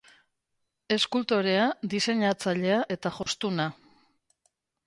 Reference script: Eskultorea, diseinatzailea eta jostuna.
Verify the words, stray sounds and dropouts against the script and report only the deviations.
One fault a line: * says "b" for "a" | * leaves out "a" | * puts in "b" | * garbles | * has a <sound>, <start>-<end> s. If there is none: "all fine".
* has a dropout, 3.2-3.3 s